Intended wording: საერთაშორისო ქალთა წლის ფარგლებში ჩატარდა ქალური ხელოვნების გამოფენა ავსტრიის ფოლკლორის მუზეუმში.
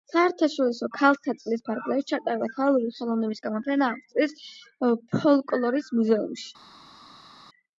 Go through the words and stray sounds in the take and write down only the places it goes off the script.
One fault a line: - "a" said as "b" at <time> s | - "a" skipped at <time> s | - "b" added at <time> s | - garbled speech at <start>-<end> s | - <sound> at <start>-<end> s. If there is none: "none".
none